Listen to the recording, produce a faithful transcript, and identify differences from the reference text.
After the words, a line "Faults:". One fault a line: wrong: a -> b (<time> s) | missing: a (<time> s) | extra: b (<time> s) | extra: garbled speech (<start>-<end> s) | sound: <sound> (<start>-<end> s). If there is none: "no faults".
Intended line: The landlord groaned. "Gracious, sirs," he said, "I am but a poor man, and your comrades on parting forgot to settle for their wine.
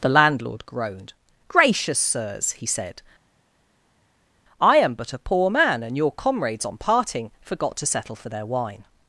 The landlord groaned. "Gracious, sirs," he said, "I am but a poor man, and your comrades on parting forgot to settle for their wine.
Faults:
no faults